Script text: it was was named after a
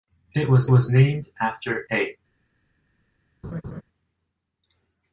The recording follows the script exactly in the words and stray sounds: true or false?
false